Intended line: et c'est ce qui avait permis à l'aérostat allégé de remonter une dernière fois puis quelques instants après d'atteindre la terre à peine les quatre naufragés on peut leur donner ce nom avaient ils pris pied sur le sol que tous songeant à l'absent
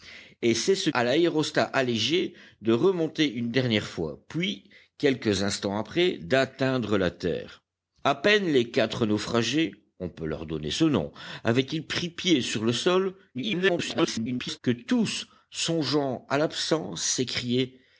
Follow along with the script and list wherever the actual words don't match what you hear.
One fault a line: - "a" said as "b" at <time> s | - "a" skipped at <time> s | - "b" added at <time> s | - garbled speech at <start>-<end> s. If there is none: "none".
- "qui avait permis" skipped at 0.9 s
- garbled speech at 13.3-14.6 s